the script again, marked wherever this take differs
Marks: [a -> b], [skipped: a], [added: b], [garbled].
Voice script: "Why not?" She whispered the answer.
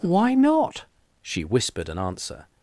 "Why not?" She whispered [the -> an] answer.